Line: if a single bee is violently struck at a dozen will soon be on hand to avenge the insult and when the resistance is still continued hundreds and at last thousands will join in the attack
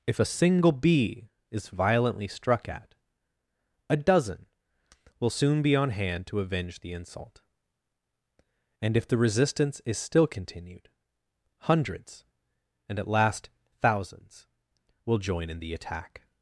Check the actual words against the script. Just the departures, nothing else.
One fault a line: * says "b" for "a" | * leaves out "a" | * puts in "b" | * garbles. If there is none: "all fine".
* says "if" for "when"